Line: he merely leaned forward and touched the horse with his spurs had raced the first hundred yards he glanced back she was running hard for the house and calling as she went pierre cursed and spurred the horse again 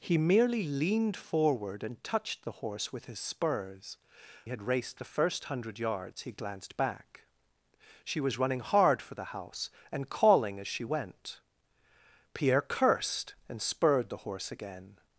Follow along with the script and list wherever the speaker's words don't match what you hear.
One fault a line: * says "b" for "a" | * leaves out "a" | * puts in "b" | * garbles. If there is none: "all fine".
all fine